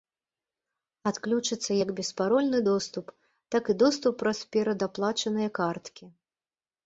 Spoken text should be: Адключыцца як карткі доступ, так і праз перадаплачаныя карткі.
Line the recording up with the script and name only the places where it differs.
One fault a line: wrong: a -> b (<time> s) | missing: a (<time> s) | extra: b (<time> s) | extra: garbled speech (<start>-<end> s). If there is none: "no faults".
wrong: карткі -> беспарольны (2.0 s)
extra: доступ (3.8 s)